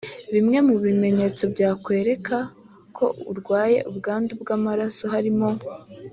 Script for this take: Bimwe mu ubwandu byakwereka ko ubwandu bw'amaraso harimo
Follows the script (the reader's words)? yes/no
no